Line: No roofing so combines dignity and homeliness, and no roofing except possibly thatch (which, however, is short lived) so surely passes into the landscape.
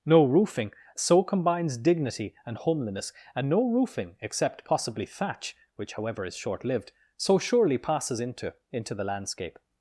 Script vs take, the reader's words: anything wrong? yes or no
yes